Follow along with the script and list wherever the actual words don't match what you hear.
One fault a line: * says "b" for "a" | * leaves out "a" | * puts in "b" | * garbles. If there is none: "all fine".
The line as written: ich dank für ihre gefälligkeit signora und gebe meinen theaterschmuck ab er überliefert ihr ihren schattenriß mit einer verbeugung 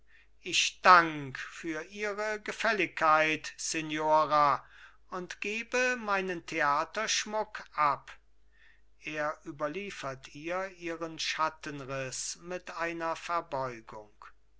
all fine